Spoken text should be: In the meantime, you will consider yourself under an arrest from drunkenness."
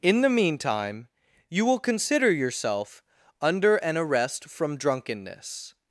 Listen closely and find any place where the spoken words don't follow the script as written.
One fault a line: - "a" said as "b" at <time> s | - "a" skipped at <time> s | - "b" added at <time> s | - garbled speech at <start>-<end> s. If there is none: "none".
none